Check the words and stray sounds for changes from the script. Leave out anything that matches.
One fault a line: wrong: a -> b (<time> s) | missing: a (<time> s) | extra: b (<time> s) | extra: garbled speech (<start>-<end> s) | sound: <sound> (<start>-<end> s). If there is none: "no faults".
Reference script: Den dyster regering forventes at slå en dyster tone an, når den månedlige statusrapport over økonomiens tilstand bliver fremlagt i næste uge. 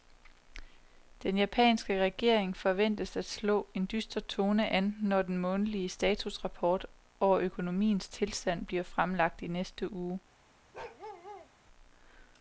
wrong: dyster -> japanske (1.4 s)
sound: bark (10.7-11.5 s)